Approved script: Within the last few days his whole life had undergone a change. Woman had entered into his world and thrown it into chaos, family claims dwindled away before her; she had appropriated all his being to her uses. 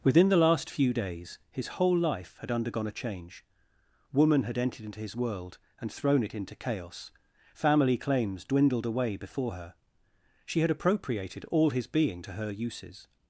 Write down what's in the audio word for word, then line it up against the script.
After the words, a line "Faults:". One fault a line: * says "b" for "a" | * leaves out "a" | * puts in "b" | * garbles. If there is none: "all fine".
Within the last few days his whole life had undergone a change. Woman had entered into his world and thrown it into chaos, family claims dwindled away before her; she had appropriated all his being to her uses.
Faults:
all fine